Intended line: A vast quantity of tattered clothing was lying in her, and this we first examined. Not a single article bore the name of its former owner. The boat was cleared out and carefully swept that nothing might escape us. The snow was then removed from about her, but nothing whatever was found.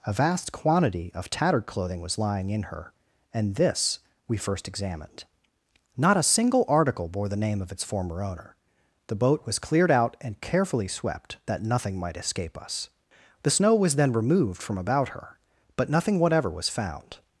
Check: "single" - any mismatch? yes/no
no